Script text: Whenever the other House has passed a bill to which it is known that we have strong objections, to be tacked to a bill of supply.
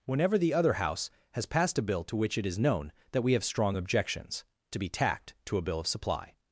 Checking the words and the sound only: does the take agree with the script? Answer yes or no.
yes